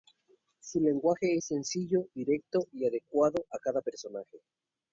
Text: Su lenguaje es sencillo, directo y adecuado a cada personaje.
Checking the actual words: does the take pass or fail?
pass